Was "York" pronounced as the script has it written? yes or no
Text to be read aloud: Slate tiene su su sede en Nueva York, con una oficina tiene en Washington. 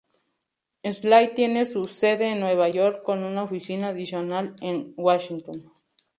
yes